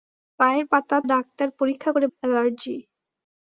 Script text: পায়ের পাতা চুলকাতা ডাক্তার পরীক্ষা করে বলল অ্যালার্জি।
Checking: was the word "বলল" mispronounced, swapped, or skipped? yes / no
yes